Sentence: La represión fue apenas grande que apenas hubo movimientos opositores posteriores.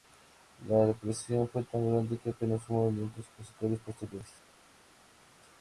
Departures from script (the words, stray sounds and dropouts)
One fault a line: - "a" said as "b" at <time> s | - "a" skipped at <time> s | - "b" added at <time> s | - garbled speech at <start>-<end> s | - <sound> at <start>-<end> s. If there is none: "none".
- "apenas" said as "tan" at 1.6 s